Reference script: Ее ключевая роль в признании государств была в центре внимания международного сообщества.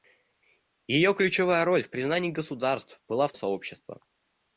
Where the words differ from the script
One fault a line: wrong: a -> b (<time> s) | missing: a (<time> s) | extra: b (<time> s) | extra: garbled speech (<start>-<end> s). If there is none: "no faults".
missing: центре внимания международного (3.3 s)